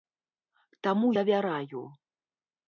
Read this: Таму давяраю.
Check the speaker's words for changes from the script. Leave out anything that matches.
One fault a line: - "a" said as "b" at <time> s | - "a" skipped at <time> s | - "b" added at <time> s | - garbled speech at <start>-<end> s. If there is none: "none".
none